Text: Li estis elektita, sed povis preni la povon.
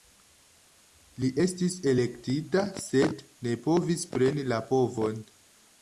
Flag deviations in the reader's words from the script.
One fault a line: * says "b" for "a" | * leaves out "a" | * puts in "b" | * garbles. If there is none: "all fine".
* puts in "ne"